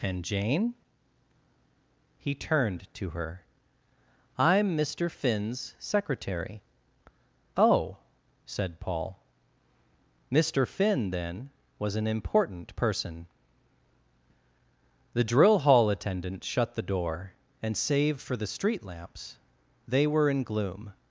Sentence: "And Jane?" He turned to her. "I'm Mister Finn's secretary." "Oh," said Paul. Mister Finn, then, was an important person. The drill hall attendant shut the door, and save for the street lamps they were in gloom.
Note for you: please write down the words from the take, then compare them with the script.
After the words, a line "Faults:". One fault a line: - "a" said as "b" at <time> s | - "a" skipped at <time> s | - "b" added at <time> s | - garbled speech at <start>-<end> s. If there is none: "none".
"And Jane?" He turned to her. "I'm Mister Finn's secretary." "Oh," said Paul. Mister Finn, then, was an important person. The drill hall attendant shut the door, and save for the street lamps they were in gloom.
Faults:
none